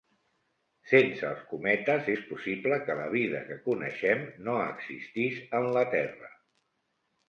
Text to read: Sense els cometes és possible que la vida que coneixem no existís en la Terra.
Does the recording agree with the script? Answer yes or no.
yes